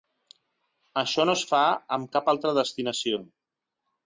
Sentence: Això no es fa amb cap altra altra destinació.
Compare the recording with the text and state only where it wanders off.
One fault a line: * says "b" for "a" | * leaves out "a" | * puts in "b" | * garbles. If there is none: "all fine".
* leaves out "altra"